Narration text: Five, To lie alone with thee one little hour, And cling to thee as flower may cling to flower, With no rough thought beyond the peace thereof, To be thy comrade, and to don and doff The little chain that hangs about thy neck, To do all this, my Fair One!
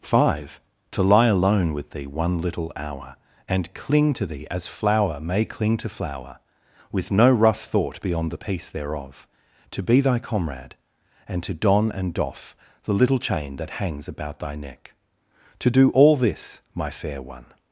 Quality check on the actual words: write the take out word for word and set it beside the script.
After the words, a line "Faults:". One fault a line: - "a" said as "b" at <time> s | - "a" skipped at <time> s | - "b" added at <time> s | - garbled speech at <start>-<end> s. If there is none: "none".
Five, To lie alone with thee one little hour, And cling to thee as flower may cling to flower, With no rough thought beyond the peace thereof, To be thy comrade, and to don and doff The little chain that hangs about thy neck, To do all this, my Fair One!
Faults:
none